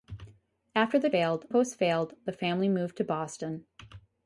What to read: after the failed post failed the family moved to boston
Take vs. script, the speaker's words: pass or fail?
pass